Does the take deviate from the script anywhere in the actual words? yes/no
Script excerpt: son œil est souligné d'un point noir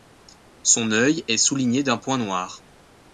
no